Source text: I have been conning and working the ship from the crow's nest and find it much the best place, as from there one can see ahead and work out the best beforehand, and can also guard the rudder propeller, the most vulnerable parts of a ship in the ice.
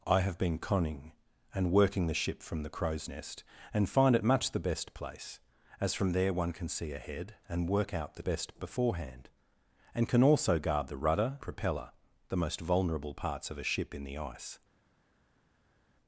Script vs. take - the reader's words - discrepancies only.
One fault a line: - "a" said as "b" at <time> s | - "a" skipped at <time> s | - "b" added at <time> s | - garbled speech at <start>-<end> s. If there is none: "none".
none